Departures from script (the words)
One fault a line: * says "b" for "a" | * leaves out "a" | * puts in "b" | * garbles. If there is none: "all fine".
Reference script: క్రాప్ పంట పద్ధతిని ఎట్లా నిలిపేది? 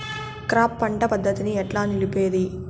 all fine